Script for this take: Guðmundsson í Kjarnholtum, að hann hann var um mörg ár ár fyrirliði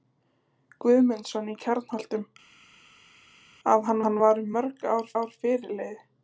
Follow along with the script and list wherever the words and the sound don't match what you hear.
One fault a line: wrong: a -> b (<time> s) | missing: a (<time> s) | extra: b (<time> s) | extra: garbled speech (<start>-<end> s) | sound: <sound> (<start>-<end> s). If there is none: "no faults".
no faults